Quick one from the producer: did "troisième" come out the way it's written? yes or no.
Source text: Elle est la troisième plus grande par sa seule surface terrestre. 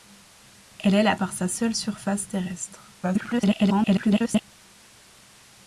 no